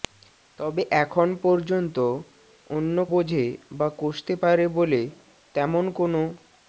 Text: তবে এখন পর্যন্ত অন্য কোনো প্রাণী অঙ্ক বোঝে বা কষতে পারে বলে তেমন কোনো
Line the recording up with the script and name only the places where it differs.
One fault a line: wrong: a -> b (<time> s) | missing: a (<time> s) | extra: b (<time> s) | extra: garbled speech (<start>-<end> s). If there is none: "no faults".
missing: কোনো প্রাণী অঙ্ক (3.0 s)